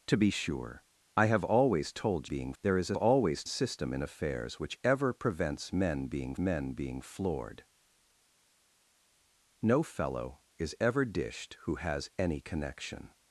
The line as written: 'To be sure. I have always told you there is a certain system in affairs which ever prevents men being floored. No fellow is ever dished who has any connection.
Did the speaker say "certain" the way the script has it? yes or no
no